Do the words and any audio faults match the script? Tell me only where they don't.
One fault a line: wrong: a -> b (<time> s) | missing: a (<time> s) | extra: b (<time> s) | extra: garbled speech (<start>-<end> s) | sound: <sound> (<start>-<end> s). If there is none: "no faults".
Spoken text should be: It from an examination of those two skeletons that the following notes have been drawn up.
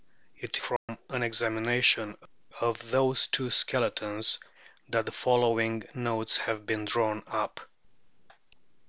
sound: dropout (0.8-0.9 s)